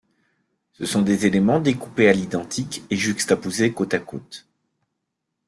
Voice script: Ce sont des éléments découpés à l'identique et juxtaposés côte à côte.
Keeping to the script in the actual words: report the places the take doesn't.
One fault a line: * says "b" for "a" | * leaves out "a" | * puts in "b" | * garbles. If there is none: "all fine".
all fine